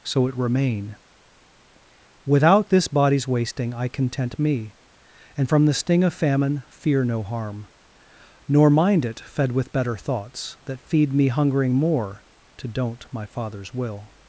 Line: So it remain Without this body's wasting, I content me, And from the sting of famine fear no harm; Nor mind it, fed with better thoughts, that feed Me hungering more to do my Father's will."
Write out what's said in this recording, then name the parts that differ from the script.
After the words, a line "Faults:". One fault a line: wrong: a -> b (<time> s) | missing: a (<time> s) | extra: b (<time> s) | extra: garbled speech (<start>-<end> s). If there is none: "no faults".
So it remain Without this body's wasting, I content me, And from the sting of famine fear no harm; Nor mind it, fed with better thoughts, that feed Me hungering more to don't my Father's will."
Faults:
wrong: do -> don't (12.7 s)